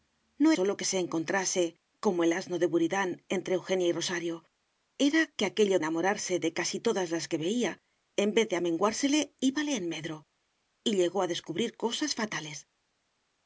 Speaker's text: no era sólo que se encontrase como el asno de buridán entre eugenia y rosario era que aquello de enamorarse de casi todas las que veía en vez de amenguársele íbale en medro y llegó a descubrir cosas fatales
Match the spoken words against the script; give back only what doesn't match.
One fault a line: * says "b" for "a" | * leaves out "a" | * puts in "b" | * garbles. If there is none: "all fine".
* leaves out "era"
* leaves out "de"